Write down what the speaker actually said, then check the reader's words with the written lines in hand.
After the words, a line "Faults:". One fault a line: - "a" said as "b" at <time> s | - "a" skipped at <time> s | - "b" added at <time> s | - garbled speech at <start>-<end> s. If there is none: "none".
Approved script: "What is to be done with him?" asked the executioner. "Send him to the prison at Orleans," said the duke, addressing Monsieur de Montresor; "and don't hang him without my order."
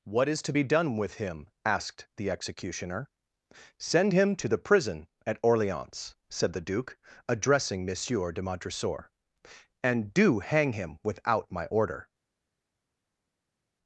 "What is to be done with him?" asked the executioner. "Send him to the prison at Orleans," said the duke, addressing Monsieur de Montresor; "and do hang him without my order."
Faults:
- "don't" said as "do" at 10.1 s